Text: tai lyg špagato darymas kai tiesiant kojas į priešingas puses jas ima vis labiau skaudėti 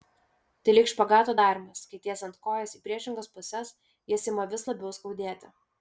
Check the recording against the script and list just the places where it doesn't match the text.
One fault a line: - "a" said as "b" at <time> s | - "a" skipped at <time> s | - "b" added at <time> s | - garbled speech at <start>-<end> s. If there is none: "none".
none